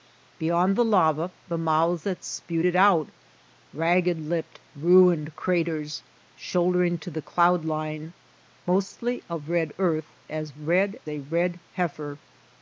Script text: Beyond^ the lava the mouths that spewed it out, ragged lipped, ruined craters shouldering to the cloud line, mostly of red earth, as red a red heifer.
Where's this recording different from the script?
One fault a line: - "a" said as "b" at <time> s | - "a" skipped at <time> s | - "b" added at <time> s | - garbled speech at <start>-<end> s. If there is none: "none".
none